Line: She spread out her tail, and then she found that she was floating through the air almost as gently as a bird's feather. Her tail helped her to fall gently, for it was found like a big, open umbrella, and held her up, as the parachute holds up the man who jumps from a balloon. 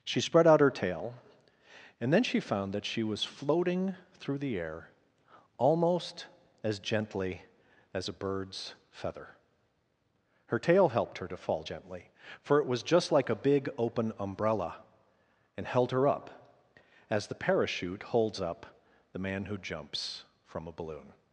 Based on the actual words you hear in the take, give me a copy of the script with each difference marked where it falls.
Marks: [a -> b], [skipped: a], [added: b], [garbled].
She spread out her tail, and then she found that she was floating through the air almost as gently as a bird's feather. Her tail helped her to fall gently, for it was [found -> just] like a big, open umbrella, and held her up, as the parachute holds up the man who jumps from a balloon.